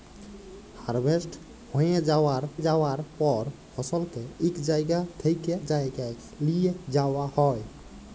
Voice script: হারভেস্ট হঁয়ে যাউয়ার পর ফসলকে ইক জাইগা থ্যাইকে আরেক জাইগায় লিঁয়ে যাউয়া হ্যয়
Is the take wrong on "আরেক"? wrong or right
wrong